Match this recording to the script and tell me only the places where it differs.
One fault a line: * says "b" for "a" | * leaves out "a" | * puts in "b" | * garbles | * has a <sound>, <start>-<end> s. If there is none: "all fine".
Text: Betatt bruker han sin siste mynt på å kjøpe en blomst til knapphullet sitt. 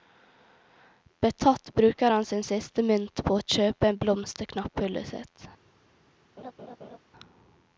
* has a laugh, 6.4-7.0 s